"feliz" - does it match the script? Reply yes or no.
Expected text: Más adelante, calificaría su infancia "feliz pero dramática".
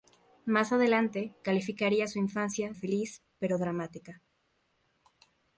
yes